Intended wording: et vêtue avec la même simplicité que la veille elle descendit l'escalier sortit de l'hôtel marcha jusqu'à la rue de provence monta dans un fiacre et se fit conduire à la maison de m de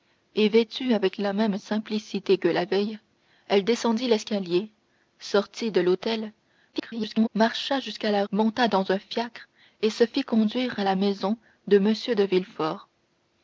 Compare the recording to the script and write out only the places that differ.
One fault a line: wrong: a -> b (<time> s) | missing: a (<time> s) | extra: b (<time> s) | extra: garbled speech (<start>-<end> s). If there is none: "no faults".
extra: garbled speech (6.7-7.3 s)
missing: rue de provence (8.2 s)